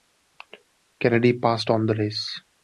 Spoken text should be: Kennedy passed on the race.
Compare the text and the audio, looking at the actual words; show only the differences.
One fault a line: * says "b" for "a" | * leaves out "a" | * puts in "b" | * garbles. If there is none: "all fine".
all fine